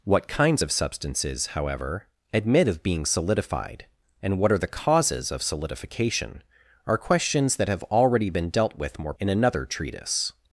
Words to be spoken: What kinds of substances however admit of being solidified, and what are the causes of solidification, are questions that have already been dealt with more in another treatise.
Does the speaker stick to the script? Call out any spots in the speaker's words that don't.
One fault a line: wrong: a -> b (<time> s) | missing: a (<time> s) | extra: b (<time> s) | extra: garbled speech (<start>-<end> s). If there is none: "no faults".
no faults